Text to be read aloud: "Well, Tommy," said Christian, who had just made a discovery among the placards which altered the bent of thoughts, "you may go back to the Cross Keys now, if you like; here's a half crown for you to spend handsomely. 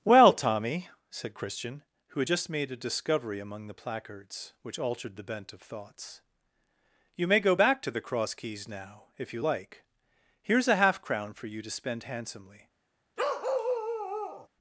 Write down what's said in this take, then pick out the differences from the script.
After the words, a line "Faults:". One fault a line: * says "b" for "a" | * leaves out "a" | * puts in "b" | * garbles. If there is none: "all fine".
"Well, Tommy," said Christian, who had just made a discovery among the placards which altered the bent of thoughts, "you may go back to the Cross Keys now, if you like; here's a half crown for you to spend handsomely.
Faults:
all fine